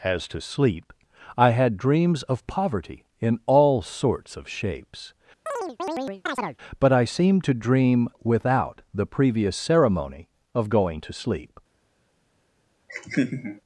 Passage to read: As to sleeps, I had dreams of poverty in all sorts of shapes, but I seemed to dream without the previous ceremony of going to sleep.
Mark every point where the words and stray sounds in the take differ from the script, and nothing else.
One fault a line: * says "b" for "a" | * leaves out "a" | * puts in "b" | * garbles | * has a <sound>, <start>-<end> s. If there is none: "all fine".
* says "sleep" for "sleeps"
* has a chirp, 5.5-6.6 s
* has a laugh, 12.9-13.6 s